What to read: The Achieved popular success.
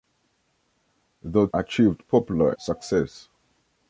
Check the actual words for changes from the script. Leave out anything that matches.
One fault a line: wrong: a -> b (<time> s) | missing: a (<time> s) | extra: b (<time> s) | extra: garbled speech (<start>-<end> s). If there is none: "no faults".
no faults